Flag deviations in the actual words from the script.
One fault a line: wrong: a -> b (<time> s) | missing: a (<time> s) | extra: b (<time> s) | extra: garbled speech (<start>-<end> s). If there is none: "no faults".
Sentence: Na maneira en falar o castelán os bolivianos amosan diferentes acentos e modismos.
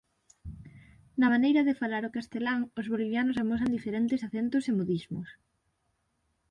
wrong: en -> de (1.7 s)